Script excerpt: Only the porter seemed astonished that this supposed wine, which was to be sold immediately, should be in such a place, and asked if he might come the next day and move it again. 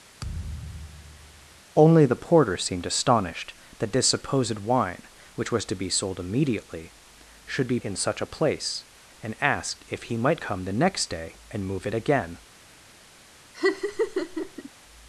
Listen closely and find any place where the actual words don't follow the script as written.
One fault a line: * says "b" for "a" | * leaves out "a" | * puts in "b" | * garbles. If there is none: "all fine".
all fine